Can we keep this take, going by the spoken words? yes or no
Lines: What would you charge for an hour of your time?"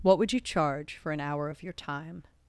yes